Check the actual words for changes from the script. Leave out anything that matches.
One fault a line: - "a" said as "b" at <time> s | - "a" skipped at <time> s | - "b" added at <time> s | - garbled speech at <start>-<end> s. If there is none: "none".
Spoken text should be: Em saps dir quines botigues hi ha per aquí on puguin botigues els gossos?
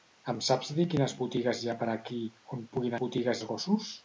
none